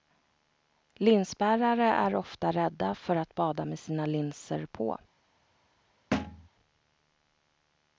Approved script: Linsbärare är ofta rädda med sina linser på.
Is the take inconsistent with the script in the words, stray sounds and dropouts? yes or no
yes